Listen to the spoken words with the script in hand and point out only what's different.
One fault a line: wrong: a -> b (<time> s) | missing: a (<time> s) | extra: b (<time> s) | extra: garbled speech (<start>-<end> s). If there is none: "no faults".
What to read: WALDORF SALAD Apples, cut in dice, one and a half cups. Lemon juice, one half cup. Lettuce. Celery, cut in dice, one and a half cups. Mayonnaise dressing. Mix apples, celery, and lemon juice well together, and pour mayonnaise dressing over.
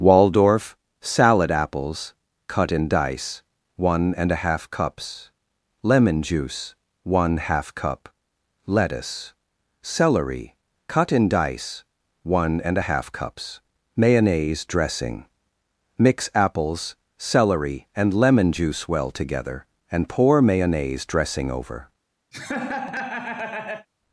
no faults